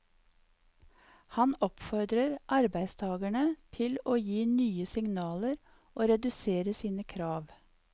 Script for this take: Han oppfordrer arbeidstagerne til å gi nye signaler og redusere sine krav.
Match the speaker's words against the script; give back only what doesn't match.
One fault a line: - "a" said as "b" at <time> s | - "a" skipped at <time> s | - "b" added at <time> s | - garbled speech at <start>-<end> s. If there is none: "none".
none